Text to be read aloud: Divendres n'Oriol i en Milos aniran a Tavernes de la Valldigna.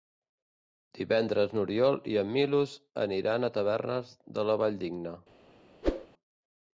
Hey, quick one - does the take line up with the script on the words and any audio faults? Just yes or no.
no